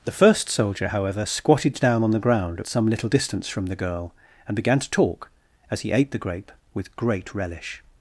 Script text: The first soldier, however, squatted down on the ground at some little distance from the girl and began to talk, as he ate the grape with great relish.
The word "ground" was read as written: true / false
true